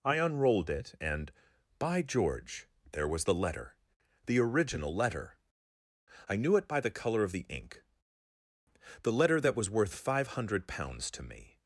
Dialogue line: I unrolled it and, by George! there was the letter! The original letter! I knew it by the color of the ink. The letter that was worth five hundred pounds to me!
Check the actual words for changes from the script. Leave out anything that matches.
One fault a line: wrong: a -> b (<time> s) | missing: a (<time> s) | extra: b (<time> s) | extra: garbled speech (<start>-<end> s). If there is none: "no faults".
no faults